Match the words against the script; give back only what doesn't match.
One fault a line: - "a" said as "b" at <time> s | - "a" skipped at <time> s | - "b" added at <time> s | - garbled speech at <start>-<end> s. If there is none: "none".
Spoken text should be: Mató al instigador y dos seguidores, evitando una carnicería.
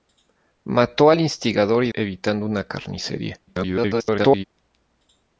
- "dos seguidores" skipped at 1.9 s
- garbled speech at 3.5-4.4 s